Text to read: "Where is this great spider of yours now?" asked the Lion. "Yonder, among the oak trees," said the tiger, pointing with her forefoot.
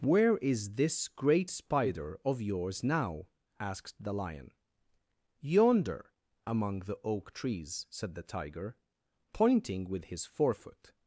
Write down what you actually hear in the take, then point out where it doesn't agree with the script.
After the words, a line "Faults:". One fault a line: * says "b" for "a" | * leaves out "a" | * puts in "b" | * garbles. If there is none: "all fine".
"Where is this great spider of yours now?" asked the Lion. "Yonder, among the oak trees," said the tiger, pointing with his forefoot.
Faults:
* says "his" for "her"